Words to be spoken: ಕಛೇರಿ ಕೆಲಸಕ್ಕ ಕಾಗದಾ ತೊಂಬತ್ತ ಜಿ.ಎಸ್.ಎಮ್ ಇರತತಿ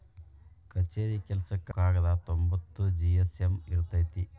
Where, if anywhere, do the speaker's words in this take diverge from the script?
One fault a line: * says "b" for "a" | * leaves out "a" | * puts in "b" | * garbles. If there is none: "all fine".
all fine